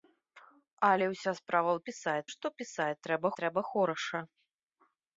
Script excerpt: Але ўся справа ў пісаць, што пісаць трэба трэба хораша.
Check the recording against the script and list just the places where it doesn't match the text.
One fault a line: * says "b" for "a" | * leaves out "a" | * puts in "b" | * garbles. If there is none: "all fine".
all fine